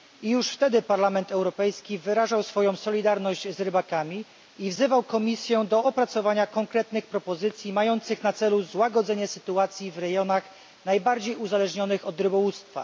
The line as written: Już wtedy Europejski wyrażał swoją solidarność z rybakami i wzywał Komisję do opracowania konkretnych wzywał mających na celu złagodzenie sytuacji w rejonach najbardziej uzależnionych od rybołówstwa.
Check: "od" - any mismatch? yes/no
no